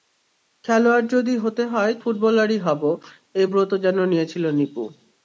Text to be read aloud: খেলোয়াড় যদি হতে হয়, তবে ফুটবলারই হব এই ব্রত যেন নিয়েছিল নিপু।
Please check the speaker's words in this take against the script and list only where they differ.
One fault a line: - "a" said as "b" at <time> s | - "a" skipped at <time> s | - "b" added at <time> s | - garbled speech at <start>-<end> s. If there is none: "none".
- "তবে" skipped at 1.9 s